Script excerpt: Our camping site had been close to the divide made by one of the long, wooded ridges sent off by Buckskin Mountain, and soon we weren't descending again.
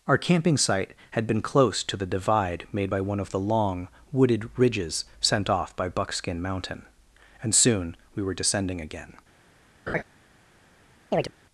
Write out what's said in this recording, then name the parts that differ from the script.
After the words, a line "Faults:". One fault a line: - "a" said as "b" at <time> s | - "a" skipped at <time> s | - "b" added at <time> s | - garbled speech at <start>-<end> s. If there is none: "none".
Our camping site had been close to the divide made by one of the long, wooded ridges sent off by Buckskin Mountain, and soon we were descending again.
Faults:
- "weren't" said as "were" at 8.2 s